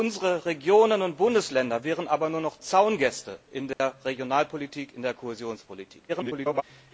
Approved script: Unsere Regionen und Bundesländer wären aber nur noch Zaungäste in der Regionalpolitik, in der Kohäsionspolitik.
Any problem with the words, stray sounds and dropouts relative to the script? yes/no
yes